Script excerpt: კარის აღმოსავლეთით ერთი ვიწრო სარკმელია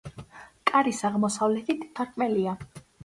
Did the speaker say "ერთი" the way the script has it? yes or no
no